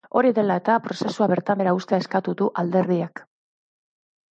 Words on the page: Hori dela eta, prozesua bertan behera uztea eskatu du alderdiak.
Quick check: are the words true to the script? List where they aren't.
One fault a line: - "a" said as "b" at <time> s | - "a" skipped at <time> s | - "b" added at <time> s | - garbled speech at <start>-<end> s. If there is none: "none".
none